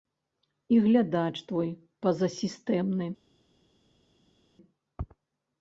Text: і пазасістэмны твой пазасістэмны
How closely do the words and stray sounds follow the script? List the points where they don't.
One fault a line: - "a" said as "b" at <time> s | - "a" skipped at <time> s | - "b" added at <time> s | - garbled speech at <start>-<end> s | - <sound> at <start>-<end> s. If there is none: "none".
- "пазасістэмны" said as "глядач" at 0.8 s